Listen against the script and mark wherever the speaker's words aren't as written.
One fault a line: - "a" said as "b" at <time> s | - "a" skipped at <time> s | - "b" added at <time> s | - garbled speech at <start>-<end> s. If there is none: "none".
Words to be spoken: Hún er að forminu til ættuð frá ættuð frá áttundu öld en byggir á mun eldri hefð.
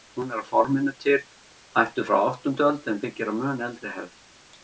- "ættuð frá" skipped at 2.2 s